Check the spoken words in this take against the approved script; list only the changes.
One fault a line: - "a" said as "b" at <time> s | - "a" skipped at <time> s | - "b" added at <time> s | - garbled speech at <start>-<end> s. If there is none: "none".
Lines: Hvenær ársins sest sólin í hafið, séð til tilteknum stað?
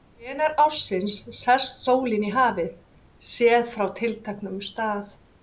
- "til" said as "frá" at 3.8 s